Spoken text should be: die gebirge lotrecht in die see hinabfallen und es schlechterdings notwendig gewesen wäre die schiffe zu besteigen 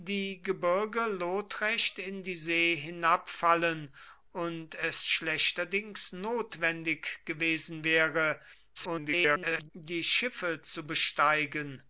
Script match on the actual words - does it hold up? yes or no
no